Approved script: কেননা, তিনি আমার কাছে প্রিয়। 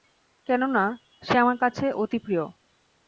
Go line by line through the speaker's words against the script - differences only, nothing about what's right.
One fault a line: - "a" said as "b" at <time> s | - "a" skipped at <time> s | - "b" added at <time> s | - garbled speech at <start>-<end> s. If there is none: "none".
- "তিনি" said as "সে" at 1.2 s
- "অতি" added at 1.9 s